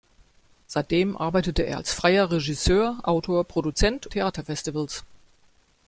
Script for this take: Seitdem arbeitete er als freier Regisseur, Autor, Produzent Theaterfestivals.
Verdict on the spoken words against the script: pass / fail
pass